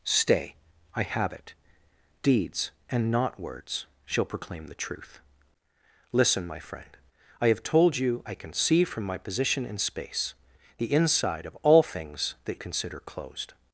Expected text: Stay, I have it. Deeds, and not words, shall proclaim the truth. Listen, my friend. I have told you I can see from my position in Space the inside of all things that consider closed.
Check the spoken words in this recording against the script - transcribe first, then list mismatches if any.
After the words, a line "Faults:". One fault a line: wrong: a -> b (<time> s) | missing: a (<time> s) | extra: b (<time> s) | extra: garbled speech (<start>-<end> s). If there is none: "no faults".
Stay, I have it. Deeds, and not words, shall proclaim the truth. Listen, my friend. I have told you I can see from my position in Space the inside of all things that consider closed.
Faults:
no faults